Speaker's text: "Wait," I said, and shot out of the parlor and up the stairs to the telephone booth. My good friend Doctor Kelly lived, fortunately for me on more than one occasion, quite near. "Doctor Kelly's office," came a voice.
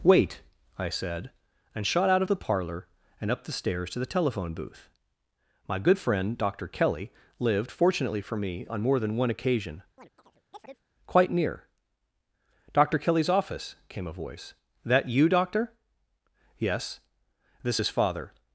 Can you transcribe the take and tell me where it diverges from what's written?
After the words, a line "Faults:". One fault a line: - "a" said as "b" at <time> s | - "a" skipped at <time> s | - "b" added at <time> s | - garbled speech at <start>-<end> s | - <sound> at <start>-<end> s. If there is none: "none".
"Wait," I said, and shot out of the parlor and up the stairs to the telephone booth. My good friend Doctor Kelly lived, fortunately for me on more than one occasion, quite near. "Doctor Kelly's office," came a voice. "That you, doctor?" "Yes." "This is Father
Faults:
- chirp at 10.0-10.8 s
- "That you doctor Yes This is Father" added at 14.9 s